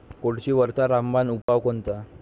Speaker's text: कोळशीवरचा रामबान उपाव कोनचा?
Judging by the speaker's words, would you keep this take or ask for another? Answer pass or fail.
pass